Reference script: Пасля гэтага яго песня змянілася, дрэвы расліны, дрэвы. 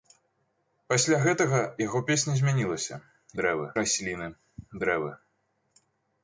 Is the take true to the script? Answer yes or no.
yes